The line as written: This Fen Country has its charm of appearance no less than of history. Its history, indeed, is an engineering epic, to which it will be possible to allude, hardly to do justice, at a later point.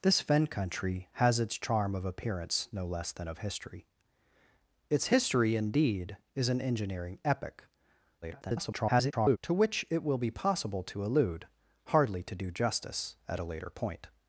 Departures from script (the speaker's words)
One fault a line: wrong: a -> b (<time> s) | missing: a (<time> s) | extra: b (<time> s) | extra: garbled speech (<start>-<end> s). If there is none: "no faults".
extra: garbled speech (8.2-9.4 s)